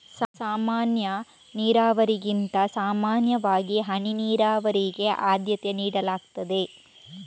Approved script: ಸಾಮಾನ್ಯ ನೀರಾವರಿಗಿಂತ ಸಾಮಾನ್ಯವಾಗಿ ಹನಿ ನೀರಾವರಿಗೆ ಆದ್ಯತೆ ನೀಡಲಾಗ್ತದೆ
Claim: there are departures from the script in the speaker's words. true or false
false